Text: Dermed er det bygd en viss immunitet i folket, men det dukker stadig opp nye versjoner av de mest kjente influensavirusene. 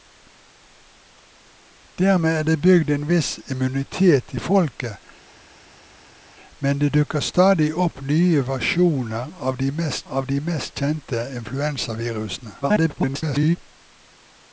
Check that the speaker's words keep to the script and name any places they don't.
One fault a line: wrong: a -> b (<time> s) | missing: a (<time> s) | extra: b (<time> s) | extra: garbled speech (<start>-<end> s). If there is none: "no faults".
extra: av de mest (10.1 s)
extra: garbled speech (12.6-13.6 s)